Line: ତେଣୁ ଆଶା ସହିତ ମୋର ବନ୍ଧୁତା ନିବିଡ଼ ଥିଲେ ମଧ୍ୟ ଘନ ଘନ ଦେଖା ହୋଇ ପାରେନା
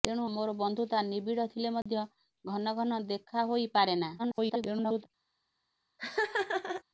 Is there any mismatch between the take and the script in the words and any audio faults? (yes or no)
yes